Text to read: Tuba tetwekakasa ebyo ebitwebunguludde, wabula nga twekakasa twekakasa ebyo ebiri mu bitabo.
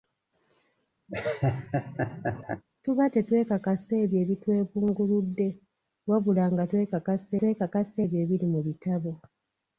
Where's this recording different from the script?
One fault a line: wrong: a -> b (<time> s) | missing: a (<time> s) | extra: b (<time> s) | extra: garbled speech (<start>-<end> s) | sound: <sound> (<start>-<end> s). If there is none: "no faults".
sound: laugh (1.1-2.6 s)